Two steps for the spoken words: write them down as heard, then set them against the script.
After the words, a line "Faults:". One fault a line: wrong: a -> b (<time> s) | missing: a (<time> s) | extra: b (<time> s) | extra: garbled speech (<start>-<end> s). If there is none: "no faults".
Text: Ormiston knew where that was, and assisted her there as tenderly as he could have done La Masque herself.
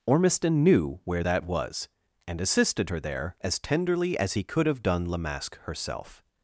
Ormiston knew where that was, and assisted her there as tenderly as he could have done La Masque herself.
Faults:
no faults